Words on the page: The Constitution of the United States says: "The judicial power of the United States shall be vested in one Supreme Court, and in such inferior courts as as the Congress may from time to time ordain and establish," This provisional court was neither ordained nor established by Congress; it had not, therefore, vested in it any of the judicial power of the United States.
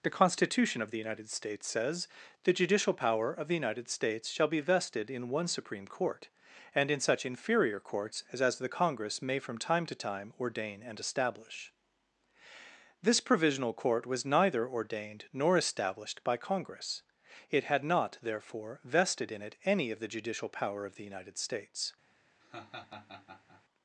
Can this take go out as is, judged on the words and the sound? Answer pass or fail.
fail